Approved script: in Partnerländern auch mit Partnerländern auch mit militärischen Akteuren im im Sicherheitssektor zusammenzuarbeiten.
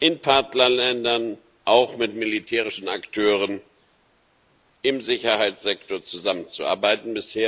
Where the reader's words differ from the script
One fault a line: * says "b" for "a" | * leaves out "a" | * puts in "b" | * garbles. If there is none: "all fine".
* leaves out "Partnerländern auch mit"
* leaves out "im"